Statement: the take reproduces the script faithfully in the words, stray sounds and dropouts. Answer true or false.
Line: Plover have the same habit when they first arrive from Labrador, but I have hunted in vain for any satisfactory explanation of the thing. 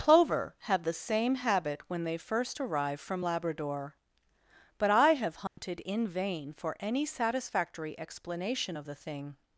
false